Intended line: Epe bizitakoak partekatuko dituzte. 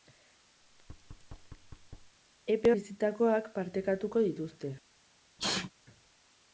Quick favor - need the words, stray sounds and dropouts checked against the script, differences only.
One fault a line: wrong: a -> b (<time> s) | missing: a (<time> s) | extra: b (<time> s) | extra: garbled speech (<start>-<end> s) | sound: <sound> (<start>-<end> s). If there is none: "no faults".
sound: thud (0.6-2.2 s)
sound: sneeze (5.4-5.7 s)